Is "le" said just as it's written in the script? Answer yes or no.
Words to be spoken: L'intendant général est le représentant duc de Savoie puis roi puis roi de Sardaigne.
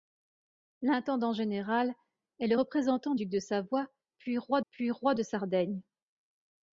yes